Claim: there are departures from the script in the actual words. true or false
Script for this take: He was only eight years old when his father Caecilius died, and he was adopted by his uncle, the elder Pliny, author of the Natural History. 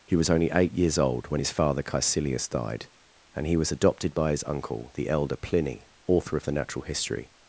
false